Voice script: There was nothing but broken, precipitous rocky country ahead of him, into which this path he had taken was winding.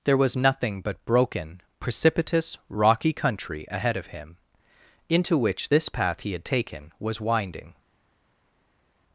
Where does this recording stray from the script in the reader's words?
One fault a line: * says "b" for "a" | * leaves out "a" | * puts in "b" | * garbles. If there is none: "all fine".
all fine